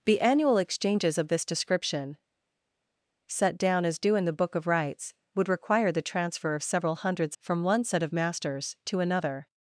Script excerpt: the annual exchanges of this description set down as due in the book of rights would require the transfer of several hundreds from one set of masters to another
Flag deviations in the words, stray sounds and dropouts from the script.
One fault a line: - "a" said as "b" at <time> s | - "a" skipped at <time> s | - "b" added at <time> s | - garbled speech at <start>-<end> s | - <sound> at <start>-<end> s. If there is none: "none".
none